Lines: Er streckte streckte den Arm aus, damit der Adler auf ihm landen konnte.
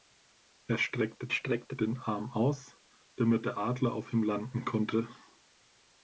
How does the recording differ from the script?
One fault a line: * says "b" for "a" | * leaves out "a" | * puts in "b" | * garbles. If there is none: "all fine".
all fine